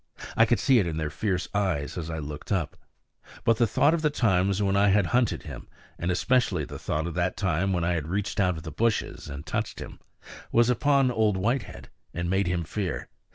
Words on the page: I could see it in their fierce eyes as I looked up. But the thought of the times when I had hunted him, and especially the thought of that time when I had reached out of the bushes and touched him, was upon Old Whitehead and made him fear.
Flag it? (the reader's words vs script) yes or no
no